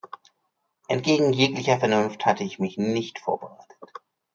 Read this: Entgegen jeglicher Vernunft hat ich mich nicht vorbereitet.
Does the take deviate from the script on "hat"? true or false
true